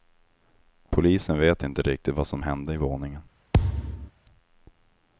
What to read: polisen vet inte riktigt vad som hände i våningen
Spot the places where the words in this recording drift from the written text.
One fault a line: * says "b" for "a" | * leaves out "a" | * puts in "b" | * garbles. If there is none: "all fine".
all fine